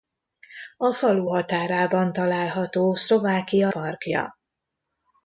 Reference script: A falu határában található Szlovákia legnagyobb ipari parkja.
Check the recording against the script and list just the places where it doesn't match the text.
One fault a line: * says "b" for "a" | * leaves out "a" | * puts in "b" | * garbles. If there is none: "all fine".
* leaves out "legnagyobb ipari"